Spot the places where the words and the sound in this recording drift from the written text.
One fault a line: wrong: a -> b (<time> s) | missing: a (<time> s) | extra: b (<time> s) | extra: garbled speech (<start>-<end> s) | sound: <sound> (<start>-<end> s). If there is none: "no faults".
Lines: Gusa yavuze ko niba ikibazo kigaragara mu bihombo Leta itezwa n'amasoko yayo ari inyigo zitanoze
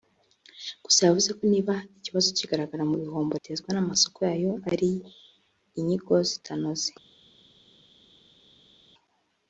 missing: Leta (3.3 s)